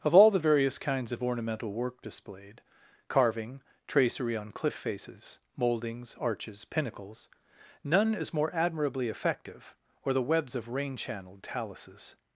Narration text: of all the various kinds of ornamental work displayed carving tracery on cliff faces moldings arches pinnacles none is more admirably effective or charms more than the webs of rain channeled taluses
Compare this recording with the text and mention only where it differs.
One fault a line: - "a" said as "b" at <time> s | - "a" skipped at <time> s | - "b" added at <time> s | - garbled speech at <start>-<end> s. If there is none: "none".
- "charms more than" skipped at 10.1 s